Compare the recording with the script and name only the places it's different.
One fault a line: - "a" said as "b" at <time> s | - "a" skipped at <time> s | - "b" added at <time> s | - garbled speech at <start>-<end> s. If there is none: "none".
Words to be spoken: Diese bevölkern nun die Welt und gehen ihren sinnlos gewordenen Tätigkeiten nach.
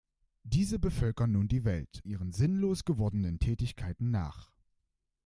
- "und gehen" skipped at 2.0 s